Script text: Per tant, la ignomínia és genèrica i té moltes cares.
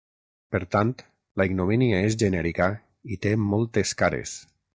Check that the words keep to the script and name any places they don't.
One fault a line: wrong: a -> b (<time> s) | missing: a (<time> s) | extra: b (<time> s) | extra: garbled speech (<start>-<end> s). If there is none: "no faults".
no faults